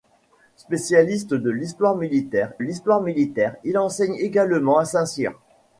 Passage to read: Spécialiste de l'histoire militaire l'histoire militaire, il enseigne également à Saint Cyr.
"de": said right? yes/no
yes